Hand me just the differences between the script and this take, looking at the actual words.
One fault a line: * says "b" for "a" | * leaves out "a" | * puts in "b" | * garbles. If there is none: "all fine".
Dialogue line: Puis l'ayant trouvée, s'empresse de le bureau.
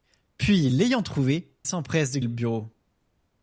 all fine